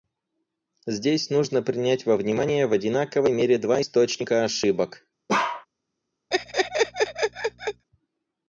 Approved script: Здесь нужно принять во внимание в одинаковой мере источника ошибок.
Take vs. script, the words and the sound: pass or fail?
fail